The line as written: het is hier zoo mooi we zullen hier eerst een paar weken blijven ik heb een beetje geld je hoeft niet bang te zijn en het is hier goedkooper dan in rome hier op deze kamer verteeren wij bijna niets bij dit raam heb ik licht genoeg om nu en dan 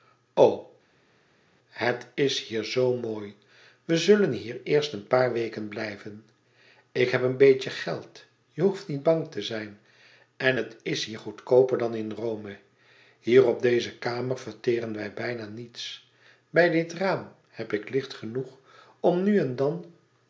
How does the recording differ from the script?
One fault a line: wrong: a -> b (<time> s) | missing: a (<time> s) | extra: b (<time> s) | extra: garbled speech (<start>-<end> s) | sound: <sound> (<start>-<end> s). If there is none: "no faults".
no faults